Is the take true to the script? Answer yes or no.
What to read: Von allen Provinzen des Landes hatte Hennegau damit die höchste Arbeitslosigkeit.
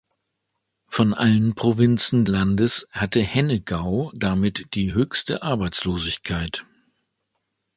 no